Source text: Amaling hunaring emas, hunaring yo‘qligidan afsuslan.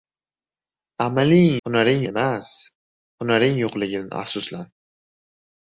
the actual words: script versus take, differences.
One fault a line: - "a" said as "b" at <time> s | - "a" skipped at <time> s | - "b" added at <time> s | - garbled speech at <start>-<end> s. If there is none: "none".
none